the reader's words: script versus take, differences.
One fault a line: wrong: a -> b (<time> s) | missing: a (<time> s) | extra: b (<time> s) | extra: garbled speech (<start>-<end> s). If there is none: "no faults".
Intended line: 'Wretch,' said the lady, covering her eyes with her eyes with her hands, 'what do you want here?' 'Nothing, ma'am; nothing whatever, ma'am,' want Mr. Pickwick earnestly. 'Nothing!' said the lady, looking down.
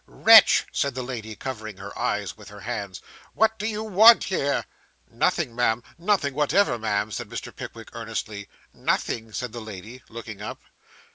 missing: eyes with her (2.6 s)
wrong: want -> said (7.1 s)
wrong: down -> up (10.4 s)